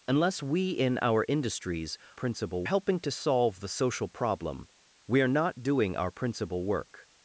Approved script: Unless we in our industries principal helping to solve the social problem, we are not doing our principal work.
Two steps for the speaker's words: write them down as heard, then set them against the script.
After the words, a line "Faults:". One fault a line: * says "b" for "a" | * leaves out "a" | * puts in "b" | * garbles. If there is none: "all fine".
Unless we in our industries principal helping to solve the social problem, we are not doing our principal work.
Faults:
all fine